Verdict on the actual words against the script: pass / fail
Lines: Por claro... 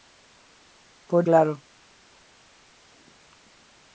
pass